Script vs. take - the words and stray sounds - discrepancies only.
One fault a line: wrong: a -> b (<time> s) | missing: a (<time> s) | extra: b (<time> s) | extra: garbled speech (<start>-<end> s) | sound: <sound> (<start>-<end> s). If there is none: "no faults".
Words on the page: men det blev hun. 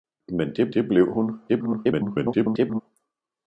extra: det (0.7 s)
extra: garbled speech (1.5-2.8 s)